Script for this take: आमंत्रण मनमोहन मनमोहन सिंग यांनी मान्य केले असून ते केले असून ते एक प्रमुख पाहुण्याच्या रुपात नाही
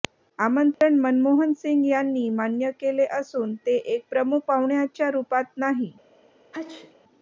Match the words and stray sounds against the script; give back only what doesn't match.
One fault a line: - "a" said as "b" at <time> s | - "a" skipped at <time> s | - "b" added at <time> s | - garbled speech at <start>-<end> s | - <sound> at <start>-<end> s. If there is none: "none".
- dropout at 0.7-0.8 s
- "मनमोहन" skipped at 1.5 s
- "केले असून ते" skipped at 3.8 s
- sneeze at 6.5-7.0 s